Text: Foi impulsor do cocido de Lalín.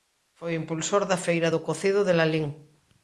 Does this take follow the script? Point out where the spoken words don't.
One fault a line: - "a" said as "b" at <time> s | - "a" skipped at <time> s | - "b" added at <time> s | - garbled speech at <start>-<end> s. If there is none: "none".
- "da Feira" added at 1.1 s